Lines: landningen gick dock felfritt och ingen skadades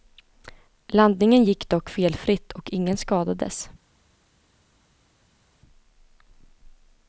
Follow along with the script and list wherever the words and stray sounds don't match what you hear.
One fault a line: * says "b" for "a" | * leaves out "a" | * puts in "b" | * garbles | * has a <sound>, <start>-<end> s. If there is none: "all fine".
all fine